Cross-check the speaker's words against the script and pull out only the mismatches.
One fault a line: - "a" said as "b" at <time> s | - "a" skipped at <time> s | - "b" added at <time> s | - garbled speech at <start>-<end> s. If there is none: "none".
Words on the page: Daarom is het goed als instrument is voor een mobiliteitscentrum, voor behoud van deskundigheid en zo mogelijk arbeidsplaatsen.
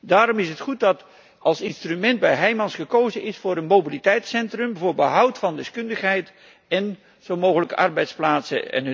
- "dat" added at 0.8 s
- "bij Heijmans gekozen" added at 2.2 s